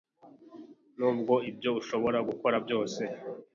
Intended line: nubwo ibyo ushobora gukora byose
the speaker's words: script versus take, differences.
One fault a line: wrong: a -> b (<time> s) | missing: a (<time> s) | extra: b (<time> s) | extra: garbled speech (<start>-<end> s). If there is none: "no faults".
no faults